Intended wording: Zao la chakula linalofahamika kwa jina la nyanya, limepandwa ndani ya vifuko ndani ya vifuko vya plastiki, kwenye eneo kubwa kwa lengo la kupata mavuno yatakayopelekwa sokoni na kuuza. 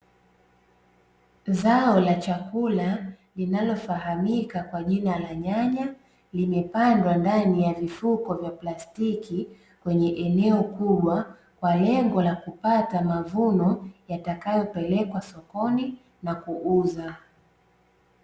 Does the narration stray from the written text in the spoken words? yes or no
yes